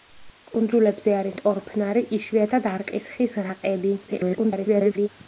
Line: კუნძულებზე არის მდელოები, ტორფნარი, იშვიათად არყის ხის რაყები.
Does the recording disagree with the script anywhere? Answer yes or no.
yes